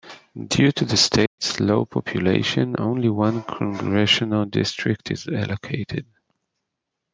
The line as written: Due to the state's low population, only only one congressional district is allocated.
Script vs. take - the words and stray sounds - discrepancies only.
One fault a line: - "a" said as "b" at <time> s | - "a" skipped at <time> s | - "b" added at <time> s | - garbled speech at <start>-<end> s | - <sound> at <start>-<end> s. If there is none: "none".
- dropout at 1.3-1.4 s
- "only" skipped at 3.1 s